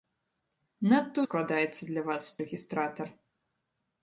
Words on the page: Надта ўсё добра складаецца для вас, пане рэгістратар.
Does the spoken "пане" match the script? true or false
false